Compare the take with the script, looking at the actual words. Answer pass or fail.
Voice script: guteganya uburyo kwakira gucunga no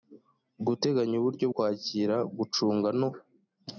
pass